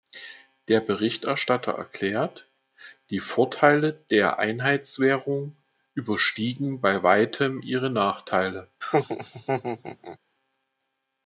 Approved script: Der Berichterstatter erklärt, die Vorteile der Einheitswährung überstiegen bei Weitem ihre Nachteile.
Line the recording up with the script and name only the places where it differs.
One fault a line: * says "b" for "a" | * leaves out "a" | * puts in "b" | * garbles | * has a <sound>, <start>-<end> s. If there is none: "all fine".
* has a laugh, 8.8-10.2 s